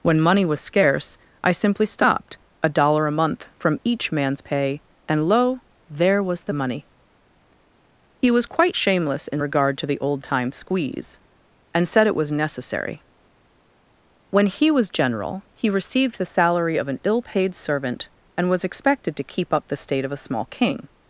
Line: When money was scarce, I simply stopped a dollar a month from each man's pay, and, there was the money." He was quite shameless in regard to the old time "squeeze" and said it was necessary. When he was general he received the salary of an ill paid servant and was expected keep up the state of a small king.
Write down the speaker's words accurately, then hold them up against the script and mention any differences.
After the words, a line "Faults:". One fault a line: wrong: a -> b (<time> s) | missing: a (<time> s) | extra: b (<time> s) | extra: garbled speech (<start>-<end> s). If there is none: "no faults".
When money was scarce, I simply stopped a dollar a month from each man's pay, and, lo, there was the money." He was quite shameless in regard to the old time "squeeze" and said it was necessary. When he was general he received the salary of an ill paid servant and was expected to keep up the state of a small king.
Faults:
extra: lo (5.3 s)
extra: to (19.2 s)